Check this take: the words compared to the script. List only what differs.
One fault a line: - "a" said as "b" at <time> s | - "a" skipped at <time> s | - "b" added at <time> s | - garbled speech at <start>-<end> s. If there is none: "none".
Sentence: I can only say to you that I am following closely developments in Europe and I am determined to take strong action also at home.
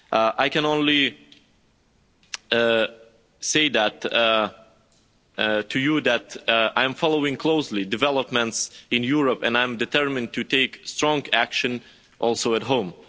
none